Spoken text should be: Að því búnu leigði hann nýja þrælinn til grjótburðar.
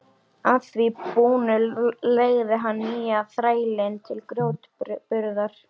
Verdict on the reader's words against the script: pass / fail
pass